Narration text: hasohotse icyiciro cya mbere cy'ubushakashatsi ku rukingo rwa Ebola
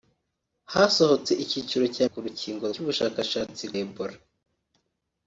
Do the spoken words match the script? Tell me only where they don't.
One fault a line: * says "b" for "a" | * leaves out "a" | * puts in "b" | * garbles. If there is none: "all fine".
* leaves out "mbere cy'ubushakashatsi"
* says "cy'ubushakashatsi" for "rwa"